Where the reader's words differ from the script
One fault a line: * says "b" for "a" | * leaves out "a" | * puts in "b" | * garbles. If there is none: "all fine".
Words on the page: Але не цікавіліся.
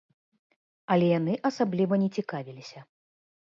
* puts in "яны асабліва"